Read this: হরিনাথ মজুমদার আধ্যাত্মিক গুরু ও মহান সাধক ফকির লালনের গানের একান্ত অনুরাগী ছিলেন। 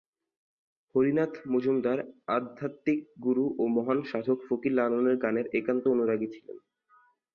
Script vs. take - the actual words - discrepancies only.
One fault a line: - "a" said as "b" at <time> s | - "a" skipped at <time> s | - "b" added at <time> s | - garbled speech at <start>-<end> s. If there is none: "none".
none